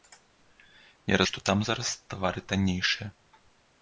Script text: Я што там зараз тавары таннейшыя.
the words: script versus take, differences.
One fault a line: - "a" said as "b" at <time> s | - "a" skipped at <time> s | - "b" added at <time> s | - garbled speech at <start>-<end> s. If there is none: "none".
none